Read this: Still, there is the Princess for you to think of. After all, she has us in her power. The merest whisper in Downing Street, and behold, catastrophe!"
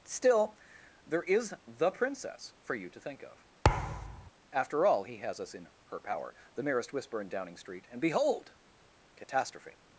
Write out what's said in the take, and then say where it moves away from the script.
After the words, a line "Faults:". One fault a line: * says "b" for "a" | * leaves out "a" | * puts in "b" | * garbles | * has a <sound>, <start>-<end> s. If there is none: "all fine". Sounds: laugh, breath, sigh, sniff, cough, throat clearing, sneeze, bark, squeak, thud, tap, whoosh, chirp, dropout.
Still, there is the Princess for you to think of. After all, he has us in her power. The merest whisper in Downing Street, and behold, catastrophe!"
Faults:
* has a thud, 3.6-4.3 s
* says "he" for "she"